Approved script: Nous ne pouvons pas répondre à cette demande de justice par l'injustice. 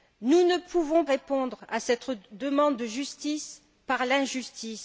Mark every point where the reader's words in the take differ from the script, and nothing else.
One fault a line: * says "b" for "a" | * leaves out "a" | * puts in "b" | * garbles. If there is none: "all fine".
* leaves out "pas"